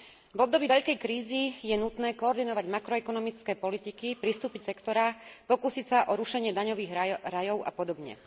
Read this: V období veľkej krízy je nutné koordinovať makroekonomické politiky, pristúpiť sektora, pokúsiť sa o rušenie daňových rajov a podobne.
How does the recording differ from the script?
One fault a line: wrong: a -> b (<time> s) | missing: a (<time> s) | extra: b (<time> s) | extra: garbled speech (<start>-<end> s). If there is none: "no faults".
no faults